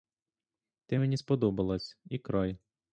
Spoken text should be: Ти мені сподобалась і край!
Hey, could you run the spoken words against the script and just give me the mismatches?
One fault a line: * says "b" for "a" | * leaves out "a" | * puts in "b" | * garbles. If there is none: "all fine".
all fine